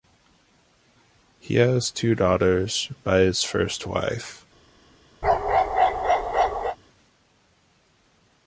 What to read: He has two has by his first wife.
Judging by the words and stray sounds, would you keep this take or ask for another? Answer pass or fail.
fail